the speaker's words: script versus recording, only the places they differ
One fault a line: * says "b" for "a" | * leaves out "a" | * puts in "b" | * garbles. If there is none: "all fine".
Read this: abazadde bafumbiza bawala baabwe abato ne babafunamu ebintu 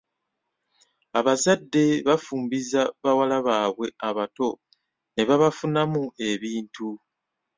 all fine